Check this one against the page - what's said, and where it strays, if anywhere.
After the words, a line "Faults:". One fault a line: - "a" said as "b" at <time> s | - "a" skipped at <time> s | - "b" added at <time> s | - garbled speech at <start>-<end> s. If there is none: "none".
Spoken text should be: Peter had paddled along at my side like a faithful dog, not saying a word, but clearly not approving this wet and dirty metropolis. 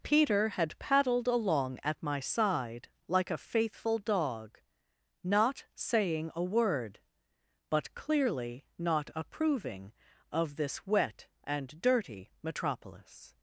Peter had paddled along at my side like a faithful dog, not saying a word, but clearly not approving of this wet and dirty metropolis.
Faults:
- "of" added at 10.3 s